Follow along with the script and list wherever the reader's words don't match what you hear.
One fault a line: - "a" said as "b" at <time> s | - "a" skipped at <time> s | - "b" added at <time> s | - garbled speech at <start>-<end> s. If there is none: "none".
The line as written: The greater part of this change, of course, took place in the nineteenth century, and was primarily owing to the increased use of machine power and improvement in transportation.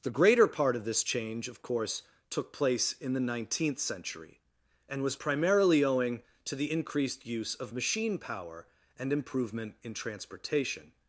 none